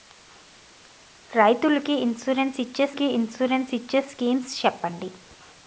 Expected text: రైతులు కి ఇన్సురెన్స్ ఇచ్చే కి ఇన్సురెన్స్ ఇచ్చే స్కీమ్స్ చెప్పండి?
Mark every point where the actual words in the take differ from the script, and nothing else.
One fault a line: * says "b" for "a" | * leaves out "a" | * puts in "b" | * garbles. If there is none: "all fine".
all fine